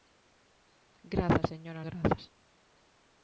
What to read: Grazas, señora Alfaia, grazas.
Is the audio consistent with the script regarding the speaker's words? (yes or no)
no